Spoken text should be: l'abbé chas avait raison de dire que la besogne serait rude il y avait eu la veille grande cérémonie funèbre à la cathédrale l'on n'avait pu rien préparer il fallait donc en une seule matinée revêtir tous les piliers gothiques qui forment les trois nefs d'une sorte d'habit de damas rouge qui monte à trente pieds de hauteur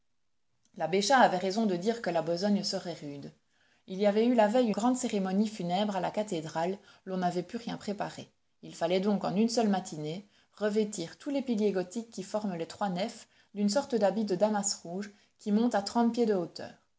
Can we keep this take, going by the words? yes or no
yes